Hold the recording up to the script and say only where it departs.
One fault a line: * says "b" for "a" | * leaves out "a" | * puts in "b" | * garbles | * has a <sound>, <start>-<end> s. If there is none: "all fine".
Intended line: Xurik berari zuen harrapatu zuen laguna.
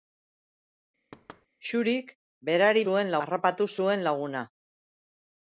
* has a thud, 1.1-1.5 s